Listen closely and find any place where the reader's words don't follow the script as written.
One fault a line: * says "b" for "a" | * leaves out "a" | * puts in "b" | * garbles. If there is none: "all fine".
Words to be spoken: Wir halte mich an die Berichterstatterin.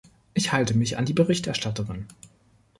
* says "Ich" for "Wir"